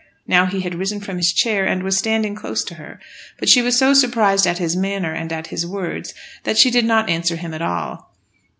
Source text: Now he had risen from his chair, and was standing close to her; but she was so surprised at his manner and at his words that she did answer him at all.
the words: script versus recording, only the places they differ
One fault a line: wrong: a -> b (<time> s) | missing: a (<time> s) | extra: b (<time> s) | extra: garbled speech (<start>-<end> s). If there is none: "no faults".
extra: not (6.8 s)